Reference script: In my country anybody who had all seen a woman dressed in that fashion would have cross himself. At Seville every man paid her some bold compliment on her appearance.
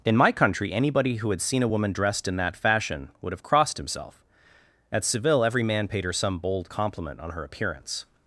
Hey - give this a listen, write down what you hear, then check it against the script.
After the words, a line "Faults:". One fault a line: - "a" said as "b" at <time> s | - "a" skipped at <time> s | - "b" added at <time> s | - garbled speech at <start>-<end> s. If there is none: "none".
In my country anybody who had seen a woman dressed in that fashion would have crossed himself. At Seville every man paid her some bold compliment on her appearance.
Faults:
- "all" skipped at 1.4 s
- "cross" said as "crossed" at 3.4 s